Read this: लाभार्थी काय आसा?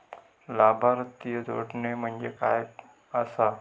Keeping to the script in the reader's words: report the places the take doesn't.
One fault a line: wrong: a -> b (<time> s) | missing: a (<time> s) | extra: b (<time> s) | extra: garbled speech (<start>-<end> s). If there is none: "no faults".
extra: जोडणे म्हणजे (1.4 s)